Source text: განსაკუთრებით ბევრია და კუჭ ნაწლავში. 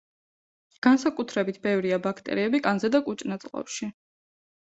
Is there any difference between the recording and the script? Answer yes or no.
yes